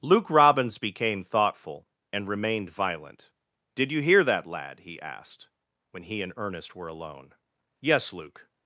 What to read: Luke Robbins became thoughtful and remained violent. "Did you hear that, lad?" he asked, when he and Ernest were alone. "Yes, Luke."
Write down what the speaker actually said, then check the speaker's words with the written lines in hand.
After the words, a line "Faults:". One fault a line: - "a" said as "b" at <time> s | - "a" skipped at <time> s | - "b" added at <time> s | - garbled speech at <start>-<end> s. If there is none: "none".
Luke Robbins became thoughtful and remained violent. "Did you hear that, lad?" he asked, when he and Ernest were alone. "Yes, Luke."
Faults:
none